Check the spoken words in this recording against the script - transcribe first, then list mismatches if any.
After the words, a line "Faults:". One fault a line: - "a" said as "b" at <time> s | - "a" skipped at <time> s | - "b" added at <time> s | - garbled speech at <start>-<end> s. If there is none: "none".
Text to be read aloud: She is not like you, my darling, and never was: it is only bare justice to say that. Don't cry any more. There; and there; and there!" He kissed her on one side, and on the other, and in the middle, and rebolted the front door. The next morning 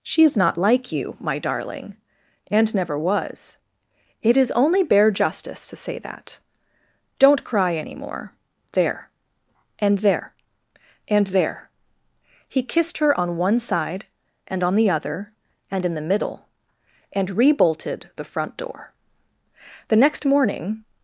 She is not like you, my darling, and never was: it is only bare justice to say that. Don't cry any more. There; and there; and there!" He kissed her on one side, and on the other, and in the middle, and rebolted the front door. The next morning
Faults:
none